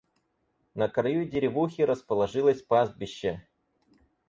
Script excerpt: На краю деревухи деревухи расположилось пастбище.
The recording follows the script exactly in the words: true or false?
false